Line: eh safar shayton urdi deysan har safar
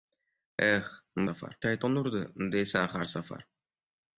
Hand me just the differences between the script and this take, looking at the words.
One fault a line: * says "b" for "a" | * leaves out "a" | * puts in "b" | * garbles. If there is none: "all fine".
all fine